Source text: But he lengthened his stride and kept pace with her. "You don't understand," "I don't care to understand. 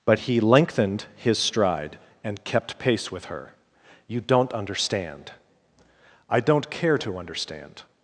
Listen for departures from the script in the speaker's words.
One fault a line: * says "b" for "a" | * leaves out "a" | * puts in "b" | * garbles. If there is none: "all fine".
all fine